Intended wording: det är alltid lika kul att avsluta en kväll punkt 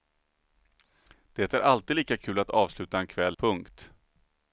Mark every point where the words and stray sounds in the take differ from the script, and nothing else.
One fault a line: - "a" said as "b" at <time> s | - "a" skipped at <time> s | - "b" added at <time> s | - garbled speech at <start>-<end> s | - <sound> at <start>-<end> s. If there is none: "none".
none